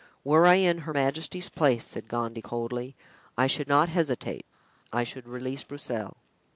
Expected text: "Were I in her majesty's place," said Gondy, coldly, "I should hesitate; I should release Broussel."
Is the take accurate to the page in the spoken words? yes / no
no